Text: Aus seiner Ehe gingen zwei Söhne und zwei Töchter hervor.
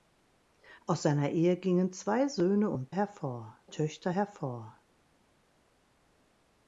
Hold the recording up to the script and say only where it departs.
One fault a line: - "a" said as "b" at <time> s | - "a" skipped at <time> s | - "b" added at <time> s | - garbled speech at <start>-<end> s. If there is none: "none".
- "zwei" said as "hervor" at 2.9 s